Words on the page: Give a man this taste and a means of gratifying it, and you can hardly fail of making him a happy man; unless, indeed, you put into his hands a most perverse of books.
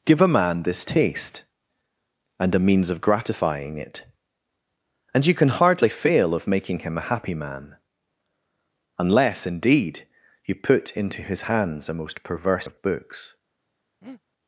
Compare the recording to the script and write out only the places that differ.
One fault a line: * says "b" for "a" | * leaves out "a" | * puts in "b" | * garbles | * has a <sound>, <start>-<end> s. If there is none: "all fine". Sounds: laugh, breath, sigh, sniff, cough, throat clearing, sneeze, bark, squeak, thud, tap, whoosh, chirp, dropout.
* has a breath, 14.0-14.2 s